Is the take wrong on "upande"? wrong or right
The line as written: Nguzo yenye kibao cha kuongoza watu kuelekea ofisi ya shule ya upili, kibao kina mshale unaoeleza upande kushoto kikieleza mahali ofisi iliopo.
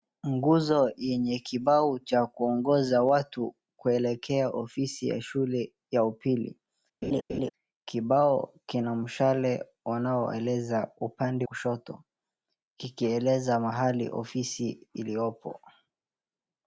right